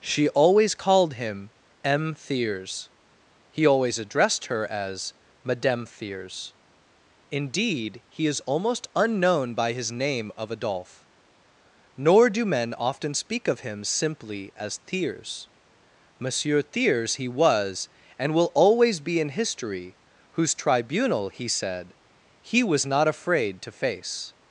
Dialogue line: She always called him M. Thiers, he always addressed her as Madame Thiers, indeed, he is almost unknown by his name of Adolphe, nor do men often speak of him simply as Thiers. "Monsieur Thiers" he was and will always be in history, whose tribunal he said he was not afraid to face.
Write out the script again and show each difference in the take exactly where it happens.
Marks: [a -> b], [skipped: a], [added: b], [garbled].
She always called him M. Thiers, he always addressed her as Madame Thiers, indeed, he is almost unknown by his name of Adolphe, nor do men often speak of him simply as Thiers. "Monsieur Thiers" he was and will always be in history, whose tribunal he said he was not afraid to face.